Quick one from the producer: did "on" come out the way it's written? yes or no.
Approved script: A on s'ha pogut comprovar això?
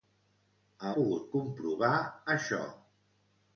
no